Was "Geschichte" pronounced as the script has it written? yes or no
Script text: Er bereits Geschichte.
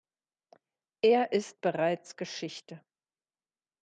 yes